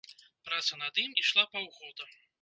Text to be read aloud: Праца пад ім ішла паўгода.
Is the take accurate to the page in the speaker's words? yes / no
no